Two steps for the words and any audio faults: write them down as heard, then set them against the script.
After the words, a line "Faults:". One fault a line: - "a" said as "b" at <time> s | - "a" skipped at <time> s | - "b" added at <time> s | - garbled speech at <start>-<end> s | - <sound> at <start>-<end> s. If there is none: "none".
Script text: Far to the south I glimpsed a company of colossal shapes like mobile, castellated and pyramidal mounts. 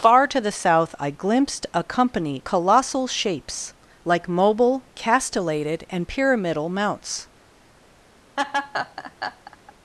Far to the south I glimpsed a company colossal shapes like mobile, castellated and pyramidal mounts.
Faults:
- "of" skipped at 2.4 s
- laugh at 8.4-9.7 s